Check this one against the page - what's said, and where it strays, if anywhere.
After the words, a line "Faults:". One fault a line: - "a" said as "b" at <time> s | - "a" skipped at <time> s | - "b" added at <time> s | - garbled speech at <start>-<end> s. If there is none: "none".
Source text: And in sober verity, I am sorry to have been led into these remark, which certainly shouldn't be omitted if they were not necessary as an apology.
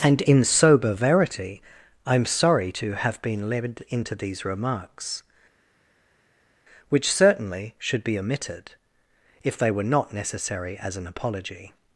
And in sober verity, I am sorry to have been led into these remarks, which certainly should be omitted if they were not necessary as an apology.
Faults:
- "remark" said as "remarks" at 4.4 s
- "shouldn't" said as "should" at 7.8 s